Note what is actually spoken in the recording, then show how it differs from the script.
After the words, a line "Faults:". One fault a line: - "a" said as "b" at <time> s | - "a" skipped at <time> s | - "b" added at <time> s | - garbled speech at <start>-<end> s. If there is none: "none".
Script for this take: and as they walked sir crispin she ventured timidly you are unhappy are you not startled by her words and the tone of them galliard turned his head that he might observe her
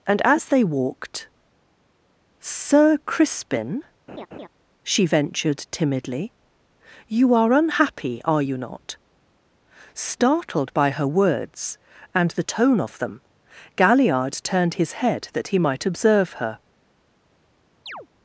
and as they walked sir crispin she ventured timidly you are unhappy are you not startled by her words and the tone of them galliard turned his head that he might observe her
Faults:
none